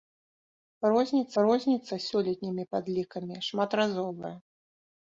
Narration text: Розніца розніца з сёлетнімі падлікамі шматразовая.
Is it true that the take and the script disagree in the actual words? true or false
false